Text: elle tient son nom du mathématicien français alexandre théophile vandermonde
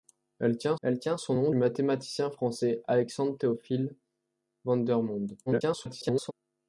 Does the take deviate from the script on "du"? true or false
true